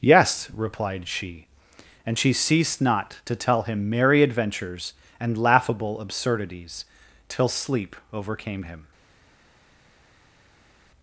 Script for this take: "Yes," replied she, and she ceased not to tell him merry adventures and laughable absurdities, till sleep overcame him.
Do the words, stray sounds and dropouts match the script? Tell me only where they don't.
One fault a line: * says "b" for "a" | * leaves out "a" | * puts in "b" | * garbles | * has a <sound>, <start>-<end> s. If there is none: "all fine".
all fine